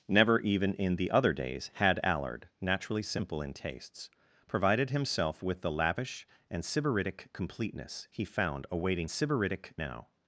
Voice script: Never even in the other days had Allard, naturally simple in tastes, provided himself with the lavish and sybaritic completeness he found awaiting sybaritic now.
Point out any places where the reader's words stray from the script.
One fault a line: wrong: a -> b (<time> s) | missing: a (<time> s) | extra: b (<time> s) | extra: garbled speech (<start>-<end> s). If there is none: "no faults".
no faults